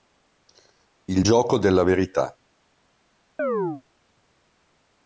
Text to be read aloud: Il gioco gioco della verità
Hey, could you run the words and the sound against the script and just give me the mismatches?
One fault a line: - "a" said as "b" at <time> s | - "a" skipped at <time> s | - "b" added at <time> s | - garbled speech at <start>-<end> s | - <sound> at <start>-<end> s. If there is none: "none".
- "gioco" skipped at 1.6 s
- chirp at 3.4-3.8 s